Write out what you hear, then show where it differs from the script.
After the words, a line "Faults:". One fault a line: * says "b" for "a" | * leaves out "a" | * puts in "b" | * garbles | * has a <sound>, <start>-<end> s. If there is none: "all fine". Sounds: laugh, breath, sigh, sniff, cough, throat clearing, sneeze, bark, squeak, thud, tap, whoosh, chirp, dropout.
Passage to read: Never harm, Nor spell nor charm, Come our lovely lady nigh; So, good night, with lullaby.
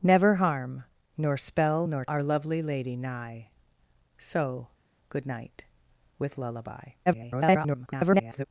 Never harm, Nor spell nor our lovely lady nigh; So, good night, with lullaby. [garbled]
Faults:
* leaves out "charm Come"
* garbles